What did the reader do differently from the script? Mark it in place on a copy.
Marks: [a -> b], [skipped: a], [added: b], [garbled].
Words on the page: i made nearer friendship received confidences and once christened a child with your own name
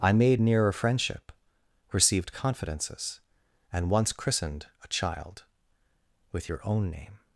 i made nearer friendship received confidences and once christened a child with your own name